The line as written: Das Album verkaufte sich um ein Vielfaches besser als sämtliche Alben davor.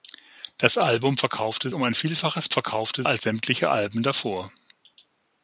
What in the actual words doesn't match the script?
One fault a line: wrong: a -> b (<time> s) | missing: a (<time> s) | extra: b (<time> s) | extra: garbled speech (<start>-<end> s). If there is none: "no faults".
missing: sich (1.7 s)
wrong: besser -> verkaufte (2.5 s)